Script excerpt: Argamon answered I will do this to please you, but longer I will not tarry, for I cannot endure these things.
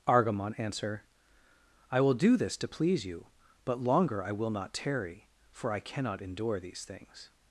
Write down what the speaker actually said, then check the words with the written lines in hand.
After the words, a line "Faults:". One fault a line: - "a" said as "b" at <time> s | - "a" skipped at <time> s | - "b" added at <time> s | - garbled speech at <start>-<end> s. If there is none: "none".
Argamon answer I will do this to please you, but longer I will not tarry, for I cannot endure these things.
Faults:
- "answered" said as "answer" at 0.6 s